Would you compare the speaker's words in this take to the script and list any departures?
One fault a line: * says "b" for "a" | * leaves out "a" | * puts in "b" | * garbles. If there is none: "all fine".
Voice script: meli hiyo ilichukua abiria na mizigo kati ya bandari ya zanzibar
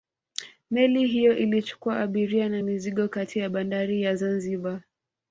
all fine